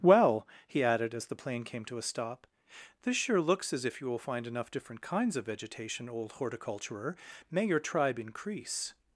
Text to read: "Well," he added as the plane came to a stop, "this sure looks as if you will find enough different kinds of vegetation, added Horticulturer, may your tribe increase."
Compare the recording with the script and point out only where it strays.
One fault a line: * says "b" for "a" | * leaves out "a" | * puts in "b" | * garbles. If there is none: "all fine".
* says "old" for "added"